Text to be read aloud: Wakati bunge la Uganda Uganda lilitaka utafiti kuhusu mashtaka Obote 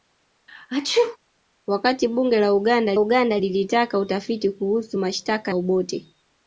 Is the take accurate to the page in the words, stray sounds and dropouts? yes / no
no